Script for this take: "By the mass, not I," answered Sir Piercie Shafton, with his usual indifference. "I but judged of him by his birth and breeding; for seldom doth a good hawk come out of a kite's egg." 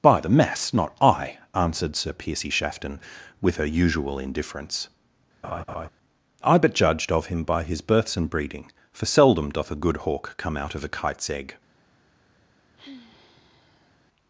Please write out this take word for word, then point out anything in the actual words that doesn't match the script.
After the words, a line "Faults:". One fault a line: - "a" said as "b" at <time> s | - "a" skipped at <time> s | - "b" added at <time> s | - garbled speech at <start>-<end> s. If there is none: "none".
"By the mass, not I," answered Sir Piercie Shafton, with her usual indifference. "I but judged of him by his births and breeding; for seldom doth a good hawk come out of a kite's egg."
Faults:
- "his" said as "her" at 3.6 s
- "birth" said as "births" at 7.8 s